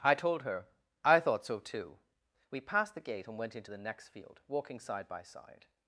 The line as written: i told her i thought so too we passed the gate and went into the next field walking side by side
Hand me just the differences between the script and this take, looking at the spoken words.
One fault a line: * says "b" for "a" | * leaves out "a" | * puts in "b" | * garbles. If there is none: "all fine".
all fine